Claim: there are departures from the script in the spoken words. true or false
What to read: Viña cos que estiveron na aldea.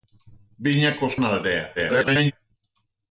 true